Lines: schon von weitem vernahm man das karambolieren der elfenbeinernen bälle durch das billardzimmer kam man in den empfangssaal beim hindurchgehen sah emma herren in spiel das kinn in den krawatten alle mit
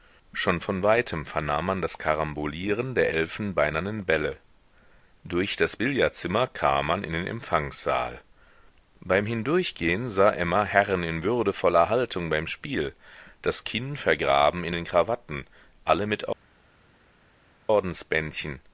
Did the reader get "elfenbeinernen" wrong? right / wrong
right